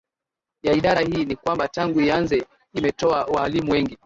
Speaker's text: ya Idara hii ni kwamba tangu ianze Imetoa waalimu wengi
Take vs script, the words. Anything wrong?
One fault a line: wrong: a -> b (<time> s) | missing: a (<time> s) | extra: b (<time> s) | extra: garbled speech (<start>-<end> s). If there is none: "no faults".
no faults